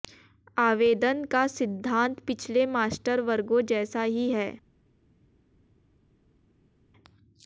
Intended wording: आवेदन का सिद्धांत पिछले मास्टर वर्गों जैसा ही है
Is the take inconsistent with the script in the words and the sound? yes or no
no